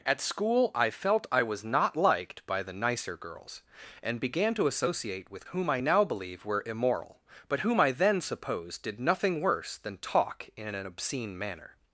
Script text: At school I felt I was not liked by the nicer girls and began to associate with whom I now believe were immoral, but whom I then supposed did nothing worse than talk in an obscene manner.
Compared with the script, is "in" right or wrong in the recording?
right